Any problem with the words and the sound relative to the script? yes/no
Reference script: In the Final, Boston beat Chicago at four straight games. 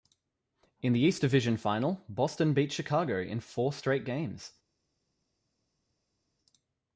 yes